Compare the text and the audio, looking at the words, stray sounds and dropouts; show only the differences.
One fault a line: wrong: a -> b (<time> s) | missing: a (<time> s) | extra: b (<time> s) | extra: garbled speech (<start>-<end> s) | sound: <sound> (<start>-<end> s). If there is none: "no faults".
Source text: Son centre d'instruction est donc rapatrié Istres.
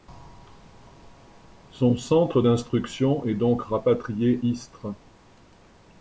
no faults